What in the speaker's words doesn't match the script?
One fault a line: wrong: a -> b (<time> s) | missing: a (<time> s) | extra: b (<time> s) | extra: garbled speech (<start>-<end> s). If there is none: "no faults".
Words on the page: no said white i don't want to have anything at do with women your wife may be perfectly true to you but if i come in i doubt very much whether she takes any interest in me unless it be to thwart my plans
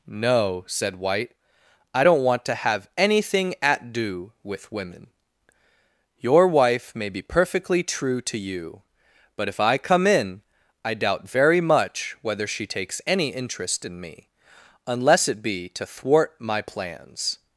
no faults